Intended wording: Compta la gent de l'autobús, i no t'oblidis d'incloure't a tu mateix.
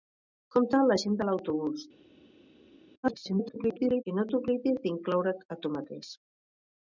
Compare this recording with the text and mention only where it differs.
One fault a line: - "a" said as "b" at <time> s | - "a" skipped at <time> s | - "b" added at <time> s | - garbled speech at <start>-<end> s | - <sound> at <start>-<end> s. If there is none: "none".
- garbled speech at 3.0-4.0 s